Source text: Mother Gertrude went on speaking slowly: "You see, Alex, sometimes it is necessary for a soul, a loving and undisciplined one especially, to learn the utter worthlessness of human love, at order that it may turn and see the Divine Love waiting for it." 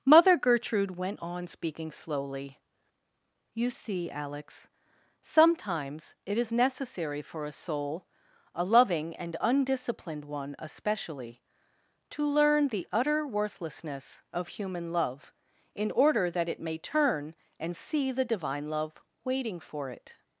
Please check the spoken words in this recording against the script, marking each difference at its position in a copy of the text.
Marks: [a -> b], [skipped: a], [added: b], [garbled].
Mother Gertrude went on speaking slowly: "You see, Alex, sometimes it is necessary for a soul, a loving and undisciplined one especially, to learn the utter worthlessness of human love, [at -> in] order that it may turn and see the Divine Love waiting for it."